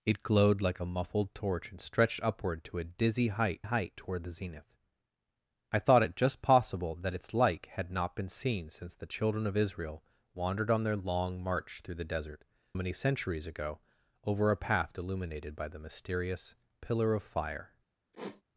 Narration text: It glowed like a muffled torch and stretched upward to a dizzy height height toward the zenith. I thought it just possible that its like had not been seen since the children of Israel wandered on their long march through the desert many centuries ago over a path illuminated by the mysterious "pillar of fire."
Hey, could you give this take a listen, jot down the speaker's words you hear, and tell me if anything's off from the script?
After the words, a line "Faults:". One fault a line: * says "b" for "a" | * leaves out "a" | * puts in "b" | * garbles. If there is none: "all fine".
It glowed like a muffled torch and stretched upward to a dizzy height height toward the zenith. I thought it just possible that its like had not been seen since the children of Israel wandered on their long march through the desert many centuries ago over a path illuminated by the mysterious "pillar of fire."
Faults:
all fine